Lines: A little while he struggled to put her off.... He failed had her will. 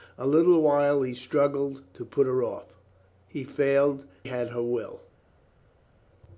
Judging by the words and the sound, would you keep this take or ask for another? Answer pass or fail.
pass